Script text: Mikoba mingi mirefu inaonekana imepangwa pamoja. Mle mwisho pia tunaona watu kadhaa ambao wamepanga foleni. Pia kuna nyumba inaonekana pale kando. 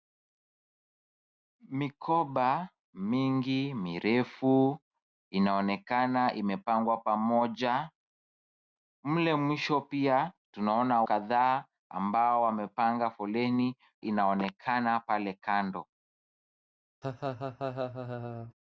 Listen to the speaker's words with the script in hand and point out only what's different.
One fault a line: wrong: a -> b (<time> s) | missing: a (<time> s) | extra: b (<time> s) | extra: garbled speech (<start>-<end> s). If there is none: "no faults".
missing: watu (11.0 s)
missing: Pia kuna nyumba (13.8 s)